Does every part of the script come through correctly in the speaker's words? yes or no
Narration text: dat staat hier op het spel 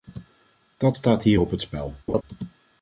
yes